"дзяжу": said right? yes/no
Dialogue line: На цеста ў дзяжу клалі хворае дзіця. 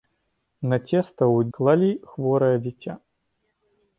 no